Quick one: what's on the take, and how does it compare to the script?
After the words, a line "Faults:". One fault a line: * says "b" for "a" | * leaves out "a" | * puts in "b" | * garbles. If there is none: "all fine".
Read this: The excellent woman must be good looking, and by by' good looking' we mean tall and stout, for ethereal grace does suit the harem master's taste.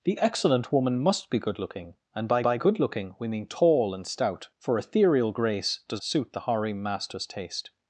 The excellent woman must be good looking, and by by' good looking' we mean tall and stout, for ethereal grace does suit the harem master's taste.
Faults:
all fine